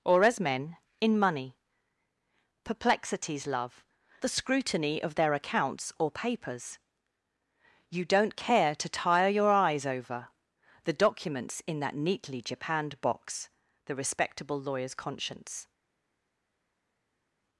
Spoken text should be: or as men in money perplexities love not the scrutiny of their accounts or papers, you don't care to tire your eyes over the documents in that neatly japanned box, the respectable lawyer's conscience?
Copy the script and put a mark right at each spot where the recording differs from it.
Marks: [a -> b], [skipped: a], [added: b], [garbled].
or as men in money perplexities love [skipped: not] the scrutiny of their accounts or papers, you don't care to tire your eyes over the documents in that neatly japanned box, the respectable lawyer's conscience?